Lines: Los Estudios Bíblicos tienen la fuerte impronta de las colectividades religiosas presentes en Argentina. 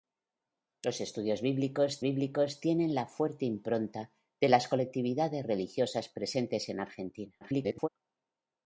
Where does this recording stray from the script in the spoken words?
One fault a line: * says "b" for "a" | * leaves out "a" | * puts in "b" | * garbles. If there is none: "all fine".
* puts in "Bíblicos"
* garbles